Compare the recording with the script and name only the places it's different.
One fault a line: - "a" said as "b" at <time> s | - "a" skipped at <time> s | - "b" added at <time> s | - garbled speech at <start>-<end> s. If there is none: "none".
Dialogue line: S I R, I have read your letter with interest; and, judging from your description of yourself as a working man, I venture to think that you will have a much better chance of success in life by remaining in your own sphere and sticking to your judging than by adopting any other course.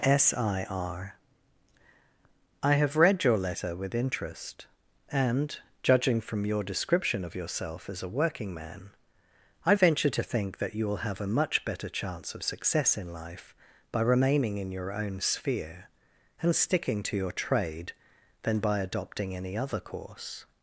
- "judging" said as "trade" at 17.3 s